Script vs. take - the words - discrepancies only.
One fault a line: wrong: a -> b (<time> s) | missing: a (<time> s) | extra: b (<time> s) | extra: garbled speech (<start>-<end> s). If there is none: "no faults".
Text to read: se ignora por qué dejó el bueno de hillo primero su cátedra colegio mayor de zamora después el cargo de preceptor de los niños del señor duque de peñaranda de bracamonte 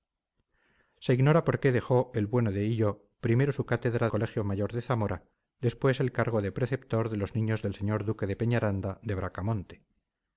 no faults